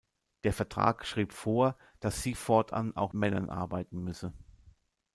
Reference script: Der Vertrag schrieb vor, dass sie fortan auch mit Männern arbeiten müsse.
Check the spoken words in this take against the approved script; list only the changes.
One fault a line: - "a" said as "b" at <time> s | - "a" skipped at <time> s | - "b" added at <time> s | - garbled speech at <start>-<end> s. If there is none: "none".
- "mit" skipped at 3.1 s